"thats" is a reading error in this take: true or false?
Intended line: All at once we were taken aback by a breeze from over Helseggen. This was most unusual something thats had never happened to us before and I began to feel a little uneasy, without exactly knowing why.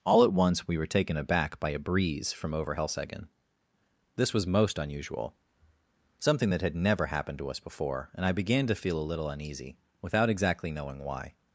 true